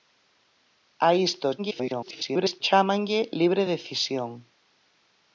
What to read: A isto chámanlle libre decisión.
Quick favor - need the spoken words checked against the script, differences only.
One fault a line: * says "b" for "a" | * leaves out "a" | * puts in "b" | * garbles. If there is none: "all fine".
* garbles